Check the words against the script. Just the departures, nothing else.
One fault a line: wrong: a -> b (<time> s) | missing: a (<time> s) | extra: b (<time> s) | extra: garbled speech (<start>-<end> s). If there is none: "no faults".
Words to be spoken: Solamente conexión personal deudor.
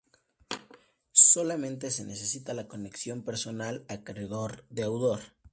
extra: se necesita la (1.9 s)
extra: acreedor (3.9 s)